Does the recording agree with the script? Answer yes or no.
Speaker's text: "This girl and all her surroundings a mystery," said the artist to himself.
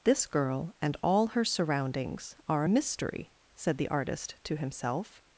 no